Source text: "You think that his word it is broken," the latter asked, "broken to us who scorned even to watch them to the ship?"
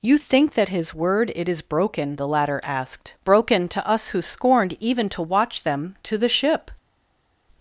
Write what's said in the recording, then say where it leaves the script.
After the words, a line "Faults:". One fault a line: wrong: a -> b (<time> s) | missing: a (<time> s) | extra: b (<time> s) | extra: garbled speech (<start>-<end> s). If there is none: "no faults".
"You think that his word it is broken," the latter asked, "broken to us who scorned even to watch them to the ship?"
Faults:
no faults